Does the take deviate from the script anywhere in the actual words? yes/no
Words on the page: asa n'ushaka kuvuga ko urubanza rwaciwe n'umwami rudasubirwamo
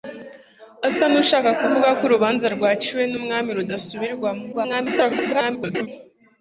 yes